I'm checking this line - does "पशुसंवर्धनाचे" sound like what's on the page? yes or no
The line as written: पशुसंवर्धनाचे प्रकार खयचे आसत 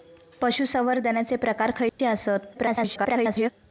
yes